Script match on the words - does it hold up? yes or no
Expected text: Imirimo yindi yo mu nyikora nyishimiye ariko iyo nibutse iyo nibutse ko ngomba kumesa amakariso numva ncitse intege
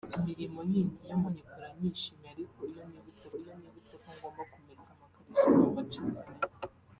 yes